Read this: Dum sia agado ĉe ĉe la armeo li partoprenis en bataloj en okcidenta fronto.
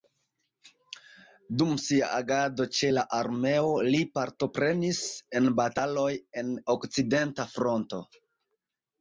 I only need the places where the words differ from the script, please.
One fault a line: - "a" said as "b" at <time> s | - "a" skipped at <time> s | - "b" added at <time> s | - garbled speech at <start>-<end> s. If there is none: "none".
- "ĉe" skipped at 2.9 s